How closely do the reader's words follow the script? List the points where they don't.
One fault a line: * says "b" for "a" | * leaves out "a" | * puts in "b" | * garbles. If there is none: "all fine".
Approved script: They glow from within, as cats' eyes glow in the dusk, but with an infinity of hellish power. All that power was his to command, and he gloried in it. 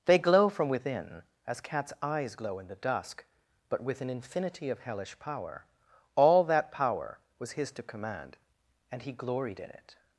all fine